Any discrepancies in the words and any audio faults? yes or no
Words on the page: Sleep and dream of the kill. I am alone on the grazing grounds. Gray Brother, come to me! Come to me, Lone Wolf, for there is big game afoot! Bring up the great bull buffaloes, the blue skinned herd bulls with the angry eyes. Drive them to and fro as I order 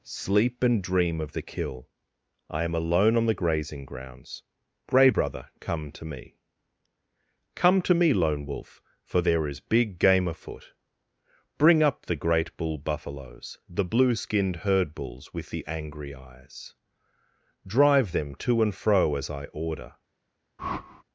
yes